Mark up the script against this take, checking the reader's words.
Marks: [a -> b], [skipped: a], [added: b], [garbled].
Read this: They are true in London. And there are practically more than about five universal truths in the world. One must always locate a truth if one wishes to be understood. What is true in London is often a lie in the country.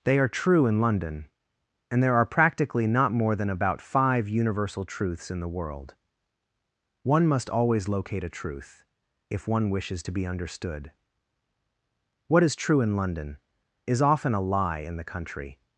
They are true in London. And there are practically [added: not] more than about five universal truths in the world. One must always locate a truth if one wishes to be understood. What is true in London is often a lie in the country.